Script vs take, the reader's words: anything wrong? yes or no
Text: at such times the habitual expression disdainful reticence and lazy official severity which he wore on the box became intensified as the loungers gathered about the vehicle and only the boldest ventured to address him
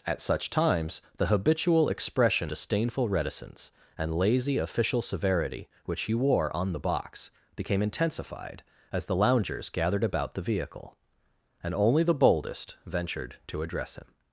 no